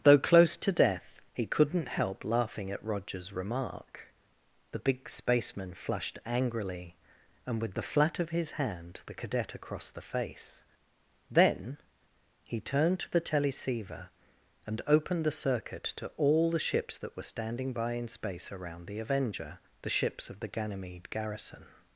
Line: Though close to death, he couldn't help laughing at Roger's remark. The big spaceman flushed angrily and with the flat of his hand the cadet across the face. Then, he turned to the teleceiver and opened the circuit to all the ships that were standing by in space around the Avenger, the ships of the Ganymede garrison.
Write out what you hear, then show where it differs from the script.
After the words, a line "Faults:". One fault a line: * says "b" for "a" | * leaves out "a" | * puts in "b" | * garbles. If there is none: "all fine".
Though close to death, he couldn't help laughing at Roger's remark. The big spaceman flushed angrily and with the flat of his hand the cadet across the face. Then, he turned to the teleceiver and opened the circuit to all the ships that were standing by in space around the Avenger, the ships of the Ganymede garrison.
Faults:
all fine